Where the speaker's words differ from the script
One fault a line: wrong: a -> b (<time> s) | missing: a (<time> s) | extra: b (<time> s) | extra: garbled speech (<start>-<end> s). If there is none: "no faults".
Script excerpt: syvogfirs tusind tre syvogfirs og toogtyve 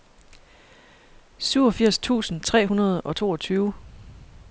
wrong: syvogfirs -> hundrede (2.6 s)